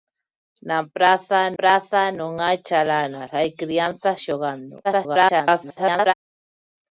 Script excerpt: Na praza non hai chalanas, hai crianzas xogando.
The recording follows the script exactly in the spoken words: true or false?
false